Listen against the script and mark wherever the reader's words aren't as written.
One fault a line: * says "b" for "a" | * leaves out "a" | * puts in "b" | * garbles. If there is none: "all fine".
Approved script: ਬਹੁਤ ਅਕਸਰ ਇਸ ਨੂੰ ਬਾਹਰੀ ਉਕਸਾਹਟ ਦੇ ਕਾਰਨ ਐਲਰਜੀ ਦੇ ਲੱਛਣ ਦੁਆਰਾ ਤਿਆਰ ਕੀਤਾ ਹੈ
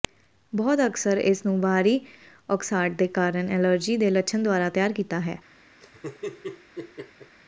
all fine